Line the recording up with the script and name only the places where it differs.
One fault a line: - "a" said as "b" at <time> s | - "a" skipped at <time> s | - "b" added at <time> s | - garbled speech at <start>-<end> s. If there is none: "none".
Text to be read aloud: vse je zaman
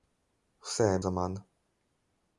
none